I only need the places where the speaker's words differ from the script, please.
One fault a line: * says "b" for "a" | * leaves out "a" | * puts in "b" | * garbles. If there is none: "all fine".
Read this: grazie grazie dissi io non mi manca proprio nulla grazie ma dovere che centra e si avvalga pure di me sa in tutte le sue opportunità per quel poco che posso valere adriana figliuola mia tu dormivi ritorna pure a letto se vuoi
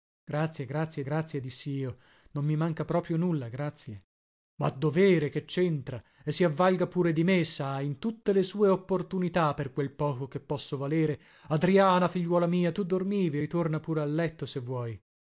* puts in "grazie"